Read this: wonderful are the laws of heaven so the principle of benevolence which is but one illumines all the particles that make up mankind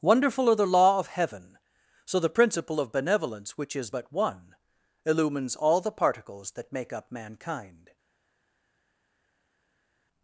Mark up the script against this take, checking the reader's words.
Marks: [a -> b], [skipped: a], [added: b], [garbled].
wonderful are the [laws -> law] of heaven so the principle of benevolence which is but one illumines all the particles that make up mankind